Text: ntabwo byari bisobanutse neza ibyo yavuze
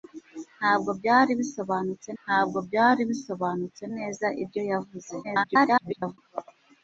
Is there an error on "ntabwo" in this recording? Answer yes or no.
no